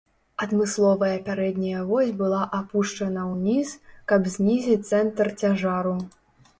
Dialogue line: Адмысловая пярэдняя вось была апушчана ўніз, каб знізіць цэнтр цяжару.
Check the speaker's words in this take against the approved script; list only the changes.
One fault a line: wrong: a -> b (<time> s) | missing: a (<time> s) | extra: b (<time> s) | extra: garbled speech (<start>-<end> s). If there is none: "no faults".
no faults